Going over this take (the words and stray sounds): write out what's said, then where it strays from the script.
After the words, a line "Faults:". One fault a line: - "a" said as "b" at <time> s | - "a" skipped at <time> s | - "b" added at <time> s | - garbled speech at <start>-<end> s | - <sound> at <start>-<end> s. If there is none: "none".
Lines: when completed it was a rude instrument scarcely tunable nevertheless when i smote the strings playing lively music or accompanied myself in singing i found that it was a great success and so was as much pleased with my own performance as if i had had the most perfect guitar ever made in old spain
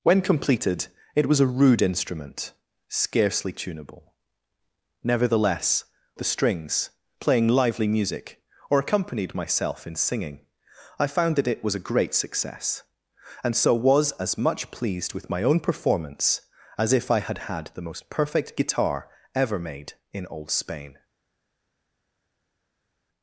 when completed it was a rude instrument scarcely tunable nevertheless the strings playing lively music or accompanied myself in singing i found that it was a great success and so was as much pleased with my own performance as if i had had the most perfect guitar ever made in old spain
Faults:
- "when i smote" skipped at 5.8 s